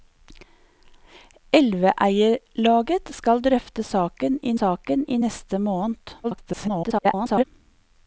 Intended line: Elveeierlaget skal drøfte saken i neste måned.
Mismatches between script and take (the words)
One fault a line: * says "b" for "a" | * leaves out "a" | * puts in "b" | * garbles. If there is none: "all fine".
* puts in "saken i"
* garbles